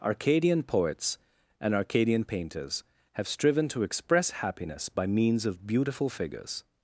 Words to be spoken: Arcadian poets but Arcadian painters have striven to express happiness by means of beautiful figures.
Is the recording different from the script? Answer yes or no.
yes